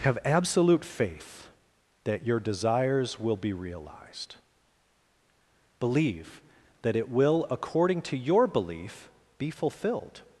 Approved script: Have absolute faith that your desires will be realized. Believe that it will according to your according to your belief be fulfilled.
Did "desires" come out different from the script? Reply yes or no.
no